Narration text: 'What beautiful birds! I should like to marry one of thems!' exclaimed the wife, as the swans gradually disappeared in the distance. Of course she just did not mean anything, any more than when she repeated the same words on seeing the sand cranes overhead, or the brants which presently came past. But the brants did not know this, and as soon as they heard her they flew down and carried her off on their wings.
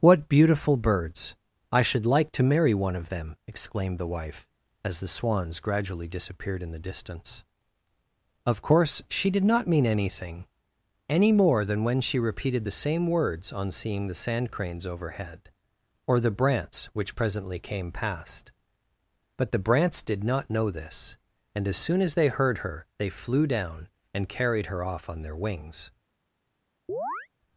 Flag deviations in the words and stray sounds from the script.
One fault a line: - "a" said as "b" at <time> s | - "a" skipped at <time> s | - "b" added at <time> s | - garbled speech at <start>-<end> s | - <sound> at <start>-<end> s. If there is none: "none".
- "thems" said as "them" at 3.1 s
- "just" skipped at 9.3 s
- chirp at 26.9-27.3 s